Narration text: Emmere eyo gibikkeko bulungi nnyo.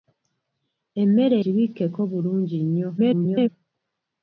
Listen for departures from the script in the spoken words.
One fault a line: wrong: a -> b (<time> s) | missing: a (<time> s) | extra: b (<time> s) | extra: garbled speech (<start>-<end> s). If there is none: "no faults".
missing: eyo (1.4 s)
extra: garbled speech (3.0-3.5 s)